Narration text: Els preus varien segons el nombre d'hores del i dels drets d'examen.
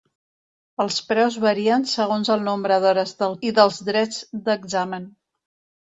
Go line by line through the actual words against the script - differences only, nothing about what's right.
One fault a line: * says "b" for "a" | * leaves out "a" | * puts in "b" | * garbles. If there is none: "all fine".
all fine